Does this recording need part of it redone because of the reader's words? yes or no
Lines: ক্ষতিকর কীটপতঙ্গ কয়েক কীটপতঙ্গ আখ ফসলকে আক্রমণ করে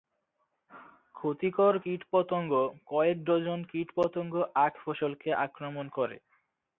yes